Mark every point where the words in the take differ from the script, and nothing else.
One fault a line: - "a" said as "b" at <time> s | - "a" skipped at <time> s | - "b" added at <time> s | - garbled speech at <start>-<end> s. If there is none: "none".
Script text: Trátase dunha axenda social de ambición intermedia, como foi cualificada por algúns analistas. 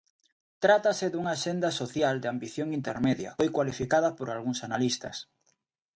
- "como" skipped at 3.3 s